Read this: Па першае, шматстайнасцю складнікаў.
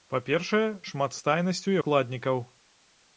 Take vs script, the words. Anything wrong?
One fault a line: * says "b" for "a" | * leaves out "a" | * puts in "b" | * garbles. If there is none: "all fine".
all fine